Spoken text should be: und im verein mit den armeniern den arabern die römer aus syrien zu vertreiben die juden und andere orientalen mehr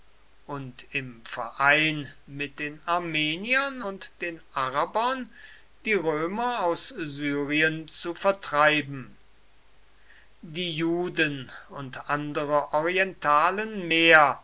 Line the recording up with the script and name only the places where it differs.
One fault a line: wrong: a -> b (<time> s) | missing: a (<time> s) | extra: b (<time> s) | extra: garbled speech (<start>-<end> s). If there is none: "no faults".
extra: und (3.8 s)